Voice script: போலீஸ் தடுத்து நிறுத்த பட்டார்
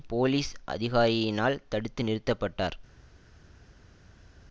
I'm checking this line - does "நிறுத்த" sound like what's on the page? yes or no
yes